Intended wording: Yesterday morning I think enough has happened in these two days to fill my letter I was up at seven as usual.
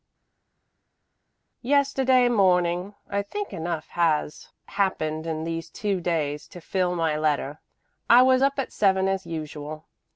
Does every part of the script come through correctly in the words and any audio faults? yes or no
yes